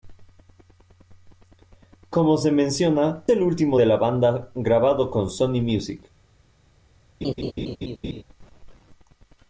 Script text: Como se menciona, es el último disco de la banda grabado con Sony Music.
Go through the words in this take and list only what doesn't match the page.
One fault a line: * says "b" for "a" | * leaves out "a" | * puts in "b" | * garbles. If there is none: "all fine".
* leaves out "es"
* leaves out "disco"